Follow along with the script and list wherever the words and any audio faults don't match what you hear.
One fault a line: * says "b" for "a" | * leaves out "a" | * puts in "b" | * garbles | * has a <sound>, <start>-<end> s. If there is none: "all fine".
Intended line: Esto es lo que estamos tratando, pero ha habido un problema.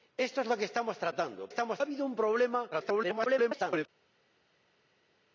* says "estamos" for "pero"
* garbles